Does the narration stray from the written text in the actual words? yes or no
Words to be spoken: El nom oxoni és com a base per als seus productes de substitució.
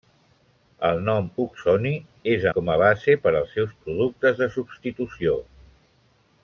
no